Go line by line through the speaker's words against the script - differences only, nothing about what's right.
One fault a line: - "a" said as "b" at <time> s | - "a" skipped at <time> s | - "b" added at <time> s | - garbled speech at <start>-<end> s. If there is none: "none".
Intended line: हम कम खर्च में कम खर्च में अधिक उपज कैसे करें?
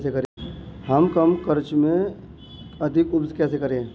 - "कम खर्च में" skipped at 2.1 s